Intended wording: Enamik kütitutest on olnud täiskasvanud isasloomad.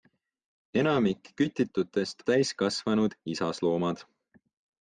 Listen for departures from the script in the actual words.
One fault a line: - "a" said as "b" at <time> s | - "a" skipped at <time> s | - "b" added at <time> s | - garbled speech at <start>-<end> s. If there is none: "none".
- "on olnud" skipped at 2.2 s